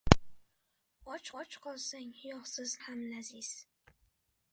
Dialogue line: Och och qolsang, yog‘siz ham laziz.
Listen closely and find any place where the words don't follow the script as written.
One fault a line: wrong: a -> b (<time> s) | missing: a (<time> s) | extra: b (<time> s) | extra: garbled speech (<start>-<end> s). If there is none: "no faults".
no faults